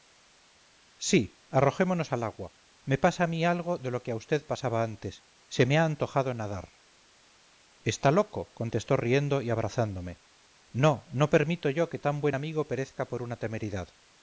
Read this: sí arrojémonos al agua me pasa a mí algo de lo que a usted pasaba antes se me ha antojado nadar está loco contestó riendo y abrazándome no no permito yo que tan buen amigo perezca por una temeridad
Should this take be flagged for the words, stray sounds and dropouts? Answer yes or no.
no